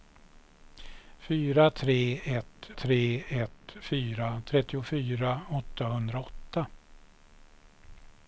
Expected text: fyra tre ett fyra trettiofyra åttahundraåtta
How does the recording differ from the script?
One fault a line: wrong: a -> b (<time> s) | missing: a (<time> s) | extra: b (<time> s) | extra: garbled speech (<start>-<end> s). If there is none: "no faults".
extra: tre ett (2.7 s)